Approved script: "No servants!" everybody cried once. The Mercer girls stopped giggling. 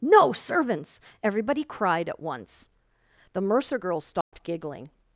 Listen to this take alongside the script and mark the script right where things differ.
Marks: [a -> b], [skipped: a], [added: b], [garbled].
"No servants!" everybody cried [added: at] once. The Mercer girls stopped giggling.